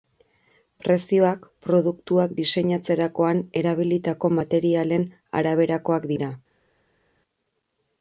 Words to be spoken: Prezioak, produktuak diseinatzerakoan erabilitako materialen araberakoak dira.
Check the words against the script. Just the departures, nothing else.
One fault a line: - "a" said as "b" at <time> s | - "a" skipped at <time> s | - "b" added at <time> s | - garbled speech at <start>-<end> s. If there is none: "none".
none